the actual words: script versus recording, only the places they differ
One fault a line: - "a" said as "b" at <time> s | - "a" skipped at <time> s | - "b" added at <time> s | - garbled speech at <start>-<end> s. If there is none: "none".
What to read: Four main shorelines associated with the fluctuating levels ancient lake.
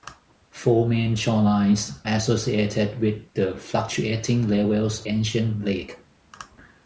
none